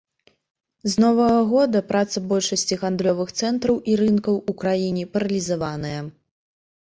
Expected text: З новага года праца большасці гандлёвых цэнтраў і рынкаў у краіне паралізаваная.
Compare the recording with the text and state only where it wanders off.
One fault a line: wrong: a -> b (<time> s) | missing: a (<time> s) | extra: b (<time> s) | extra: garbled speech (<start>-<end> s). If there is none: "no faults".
no faults